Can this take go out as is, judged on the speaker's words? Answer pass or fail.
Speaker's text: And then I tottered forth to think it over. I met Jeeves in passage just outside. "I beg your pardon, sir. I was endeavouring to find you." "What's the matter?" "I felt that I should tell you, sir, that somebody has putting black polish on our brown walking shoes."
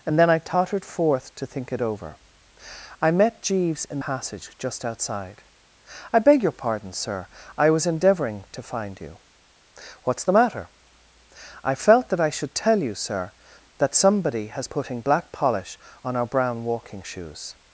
pass